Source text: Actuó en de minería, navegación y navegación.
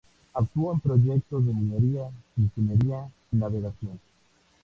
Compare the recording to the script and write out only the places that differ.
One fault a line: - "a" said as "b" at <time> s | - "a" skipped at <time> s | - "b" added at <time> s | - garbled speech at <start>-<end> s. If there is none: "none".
- "proyectos" added at 0.8 s
- "navegación" said as "ingeniería" at 2.4 s